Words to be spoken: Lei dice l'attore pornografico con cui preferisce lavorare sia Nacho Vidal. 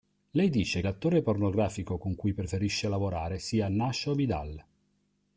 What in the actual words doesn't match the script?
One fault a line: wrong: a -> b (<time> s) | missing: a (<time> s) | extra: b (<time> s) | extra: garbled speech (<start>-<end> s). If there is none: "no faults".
no faults